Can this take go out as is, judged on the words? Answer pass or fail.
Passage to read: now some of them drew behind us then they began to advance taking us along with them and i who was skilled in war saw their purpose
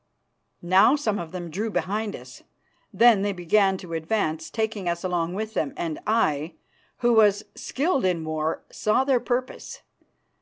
pass